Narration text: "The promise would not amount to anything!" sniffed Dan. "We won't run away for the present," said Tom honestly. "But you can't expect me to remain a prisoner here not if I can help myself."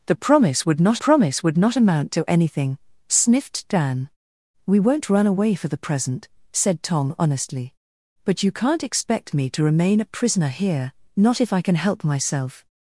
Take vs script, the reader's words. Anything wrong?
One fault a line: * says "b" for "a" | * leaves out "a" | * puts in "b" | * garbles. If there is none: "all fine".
* puts in "promise would not"